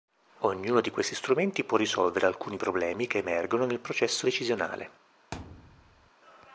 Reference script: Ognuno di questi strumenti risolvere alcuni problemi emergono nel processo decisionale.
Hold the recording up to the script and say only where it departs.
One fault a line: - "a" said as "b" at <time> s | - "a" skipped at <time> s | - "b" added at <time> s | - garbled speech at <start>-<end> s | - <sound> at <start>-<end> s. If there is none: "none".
- "può" added at 1.6 s
- "che" added at 3.1 s
- thud at 5.3-6.1 s